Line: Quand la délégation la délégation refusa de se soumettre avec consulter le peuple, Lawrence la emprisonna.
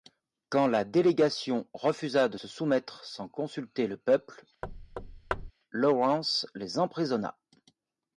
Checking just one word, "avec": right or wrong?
wrong